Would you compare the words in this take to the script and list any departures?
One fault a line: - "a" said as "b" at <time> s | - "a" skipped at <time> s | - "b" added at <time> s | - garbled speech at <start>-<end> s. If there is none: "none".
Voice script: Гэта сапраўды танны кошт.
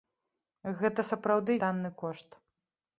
none